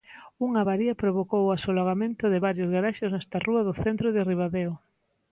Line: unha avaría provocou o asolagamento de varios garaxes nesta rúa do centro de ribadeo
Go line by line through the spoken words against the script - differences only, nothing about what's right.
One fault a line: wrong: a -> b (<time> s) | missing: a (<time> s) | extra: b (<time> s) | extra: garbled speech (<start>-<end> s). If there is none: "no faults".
no faults